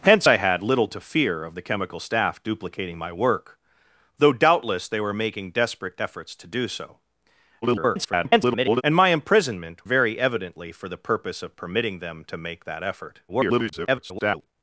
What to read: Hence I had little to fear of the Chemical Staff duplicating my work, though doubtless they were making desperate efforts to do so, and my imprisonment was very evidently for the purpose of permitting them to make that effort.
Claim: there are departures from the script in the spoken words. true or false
true